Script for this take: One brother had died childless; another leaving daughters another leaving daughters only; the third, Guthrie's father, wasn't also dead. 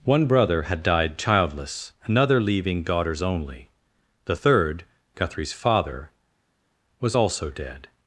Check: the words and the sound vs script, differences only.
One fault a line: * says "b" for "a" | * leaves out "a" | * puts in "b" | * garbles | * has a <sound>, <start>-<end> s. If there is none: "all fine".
* leaves out "another leaving daughters"
* says "was" for "wasn't"